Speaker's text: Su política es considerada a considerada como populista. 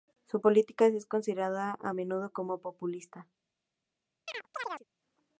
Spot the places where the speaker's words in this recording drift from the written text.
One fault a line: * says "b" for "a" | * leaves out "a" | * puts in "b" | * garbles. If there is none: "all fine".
* says "menudo" for "considerada"